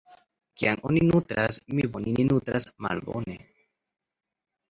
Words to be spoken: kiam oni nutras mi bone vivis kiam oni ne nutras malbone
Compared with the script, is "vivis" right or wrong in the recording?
wrong